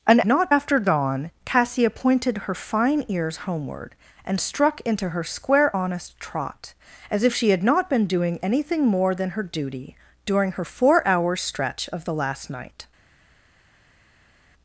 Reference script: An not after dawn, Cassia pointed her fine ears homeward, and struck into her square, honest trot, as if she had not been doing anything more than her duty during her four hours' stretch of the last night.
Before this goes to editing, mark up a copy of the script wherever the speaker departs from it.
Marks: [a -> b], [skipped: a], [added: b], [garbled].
An not after dawn, Cassia pointed her fine ears homeward, and struck into her square, honest trot, as if she had not been doing anything more than her duty during her four hours' stretch of the last night.